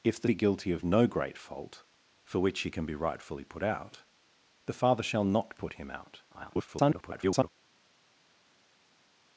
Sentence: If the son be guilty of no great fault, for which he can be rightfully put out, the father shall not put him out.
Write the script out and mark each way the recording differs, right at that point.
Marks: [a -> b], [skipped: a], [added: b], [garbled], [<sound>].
If the [skipped: son] be guilty of no great fault, for which he can be rightfully put out, the father shall not put him out. [garbled]